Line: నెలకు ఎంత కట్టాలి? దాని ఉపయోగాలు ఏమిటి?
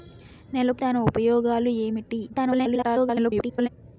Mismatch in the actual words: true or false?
true